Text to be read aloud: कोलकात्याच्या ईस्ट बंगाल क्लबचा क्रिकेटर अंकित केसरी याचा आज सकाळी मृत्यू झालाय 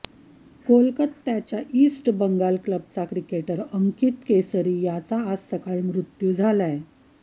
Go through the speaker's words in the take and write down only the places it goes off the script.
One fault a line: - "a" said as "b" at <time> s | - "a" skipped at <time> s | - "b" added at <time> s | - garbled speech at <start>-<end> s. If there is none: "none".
none